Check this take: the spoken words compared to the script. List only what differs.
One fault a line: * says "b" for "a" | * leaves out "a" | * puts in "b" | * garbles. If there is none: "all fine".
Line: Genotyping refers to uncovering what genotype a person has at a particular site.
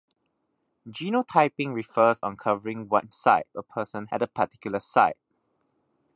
* leaves out "to"
* says "site" for "genotype"
* leaves out "has"